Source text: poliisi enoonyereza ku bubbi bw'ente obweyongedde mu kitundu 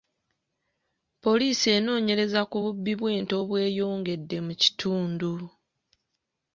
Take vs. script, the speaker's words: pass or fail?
pass